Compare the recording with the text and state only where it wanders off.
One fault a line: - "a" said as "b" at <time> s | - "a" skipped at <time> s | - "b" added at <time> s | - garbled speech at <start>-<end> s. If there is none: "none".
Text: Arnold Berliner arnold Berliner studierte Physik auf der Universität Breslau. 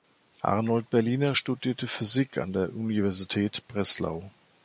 - "arnold Berliner" skipped at 1.4 s
- "auf" said as "an" at 2.4 s